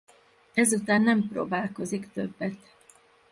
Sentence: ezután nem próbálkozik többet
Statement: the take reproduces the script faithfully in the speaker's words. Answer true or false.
true